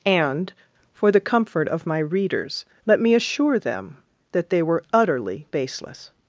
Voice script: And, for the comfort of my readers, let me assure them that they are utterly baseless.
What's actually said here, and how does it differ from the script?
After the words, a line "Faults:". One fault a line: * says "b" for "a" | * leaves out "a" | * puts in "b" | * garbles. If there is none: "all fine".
And, for the comfort of my readers, let me assure them that they were utterly baseless.
Faults:
* says "were" for "are"